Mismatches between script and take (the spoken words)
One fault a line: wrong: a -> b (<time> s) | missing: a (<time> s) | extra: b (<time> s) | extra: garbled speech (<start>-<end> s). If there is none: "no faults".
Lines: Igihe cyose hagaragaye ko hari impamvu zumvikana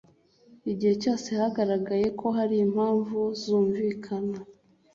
no faults